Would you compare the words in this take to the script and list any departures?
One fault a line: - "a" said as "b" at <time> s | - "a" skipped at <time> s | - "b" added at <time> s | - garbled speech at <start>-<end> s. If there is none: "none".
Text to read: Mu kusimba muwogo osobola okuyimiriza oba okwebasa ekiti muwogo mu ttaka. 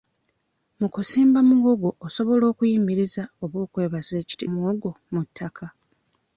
none